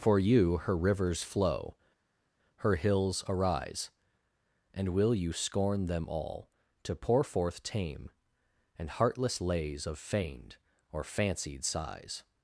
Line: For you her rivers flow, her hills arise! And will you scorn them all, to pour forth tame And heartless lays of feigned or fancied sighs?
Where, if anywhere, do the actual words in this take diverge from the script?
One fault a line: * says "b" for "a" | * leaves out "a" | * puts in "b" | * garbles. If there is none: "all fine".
all fine